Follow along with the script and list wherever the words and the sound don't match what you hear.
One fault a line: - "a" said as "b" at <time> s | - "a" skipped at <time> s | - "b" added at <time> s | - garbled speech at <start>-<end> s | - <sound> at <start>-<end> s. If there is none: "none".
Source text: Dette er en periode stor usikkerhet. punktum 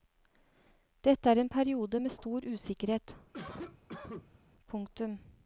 - "med" added at 2.0 s
- cough at 3.3-4.4 s